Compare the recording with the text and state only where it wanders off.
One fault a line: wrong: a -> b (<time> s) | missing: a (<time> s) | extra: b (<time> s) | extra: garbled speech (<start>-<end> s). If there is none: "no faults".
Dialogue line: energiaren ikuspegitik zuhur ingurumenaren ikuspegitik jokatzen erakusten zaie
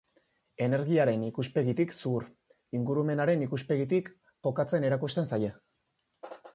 no faults